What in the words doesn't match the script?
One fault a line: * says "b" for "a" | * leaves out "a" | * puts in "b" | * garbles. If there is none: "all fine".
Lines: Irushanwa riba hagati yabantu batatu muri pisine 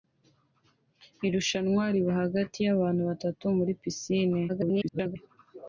* garbles